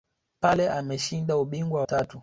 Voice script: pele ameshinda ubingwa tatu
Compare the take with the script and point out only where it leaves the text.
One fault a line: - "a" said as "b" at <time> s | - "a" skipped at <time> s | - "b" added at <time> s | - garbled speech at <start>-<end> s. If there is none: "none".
none